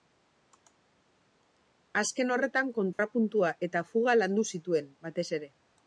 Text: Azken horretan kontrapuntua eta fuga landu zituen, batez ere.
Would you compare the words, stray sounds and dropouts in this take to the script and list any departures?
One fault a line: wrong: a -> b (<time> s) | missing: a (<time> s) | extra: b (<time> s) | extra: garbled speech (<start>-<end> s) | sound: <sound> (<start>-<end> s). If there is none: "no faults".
sound: dropout (2.9-3.0 s)